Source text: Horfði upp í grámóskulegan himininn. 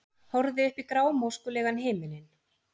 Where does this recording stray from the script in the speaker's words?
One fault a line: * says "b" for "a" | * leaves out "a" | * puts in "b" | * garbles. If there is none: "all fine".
all fine